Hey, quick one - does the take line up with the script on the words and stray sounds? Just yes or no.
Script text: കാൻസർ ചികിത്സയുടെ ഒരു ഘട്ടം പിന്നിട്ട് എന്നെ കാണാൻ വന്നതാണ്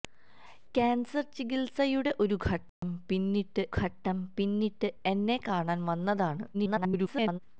no